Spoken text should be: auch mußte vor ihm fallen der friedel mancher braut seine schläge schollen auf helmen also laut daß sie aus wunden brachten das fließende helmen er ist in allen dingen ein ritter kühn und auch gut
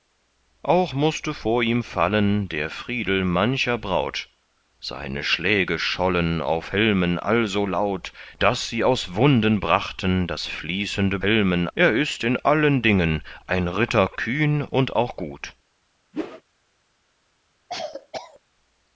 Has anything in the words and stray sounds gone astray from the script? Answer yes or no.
yes